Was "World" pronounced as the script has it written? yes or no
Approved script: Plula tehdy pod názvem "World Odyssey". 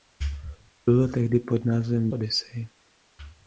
no